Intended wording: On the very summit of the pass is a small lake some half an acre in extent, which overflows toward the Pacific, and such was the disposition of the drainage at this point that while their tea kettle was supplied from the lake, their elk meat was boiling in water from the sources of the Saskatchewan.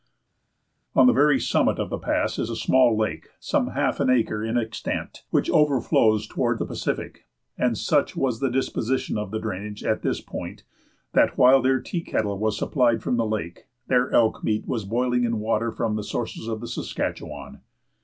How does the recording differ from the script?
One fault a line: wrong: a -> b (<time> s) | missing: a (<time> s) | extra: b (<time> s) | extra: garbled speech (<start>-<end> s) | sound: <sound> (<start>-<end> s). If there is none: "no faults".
no faults